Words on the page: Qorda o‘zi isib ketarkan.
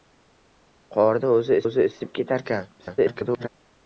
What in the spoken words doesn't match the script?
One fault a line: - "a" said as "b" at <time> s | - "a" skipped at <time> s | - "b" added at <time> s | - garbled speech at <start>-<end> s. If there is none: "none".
- "o‘zi" added at 1.6 s
- garbled speech at 2.8-3.5 s